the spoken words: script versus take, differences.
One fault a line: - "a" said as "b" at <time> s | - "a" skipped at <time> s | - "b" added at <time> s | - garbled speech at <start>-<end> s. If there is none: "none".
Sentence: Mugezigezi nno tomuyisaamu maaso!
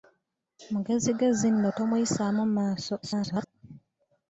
- garbled speech at 3.0-3.5 s